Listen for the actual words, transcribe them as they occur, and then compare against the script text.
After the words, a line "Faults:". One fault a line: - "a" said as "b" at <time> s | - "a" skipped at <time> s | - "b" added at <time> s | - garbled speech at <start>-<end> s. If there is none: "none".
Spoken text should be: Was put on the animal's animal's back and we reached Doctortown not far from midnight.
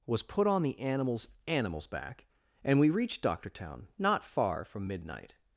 Was put on the animal's animal's back and we reached Doctortown not far from midnight.
Faults:
none